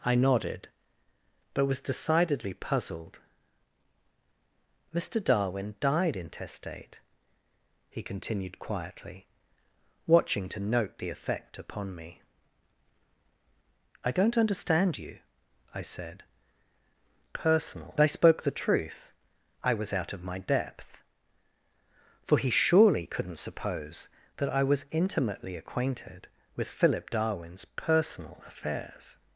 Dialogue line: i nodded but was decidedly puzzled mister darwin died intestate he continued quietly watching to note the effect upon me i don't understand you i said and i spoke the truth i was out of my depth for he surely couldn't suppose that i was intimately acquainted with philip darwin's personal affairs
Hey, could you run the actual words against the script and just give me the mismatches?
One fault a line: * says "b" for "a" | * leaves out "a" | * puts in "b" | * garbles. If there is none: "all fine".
* says "personal" for "and"